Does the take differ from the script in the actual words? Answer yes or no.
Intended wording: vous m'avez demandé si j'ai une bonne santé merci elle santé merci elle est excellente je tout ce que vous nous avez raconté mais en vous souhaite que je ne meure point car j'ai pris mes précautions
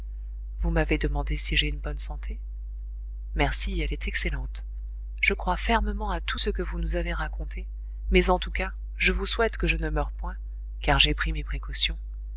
yes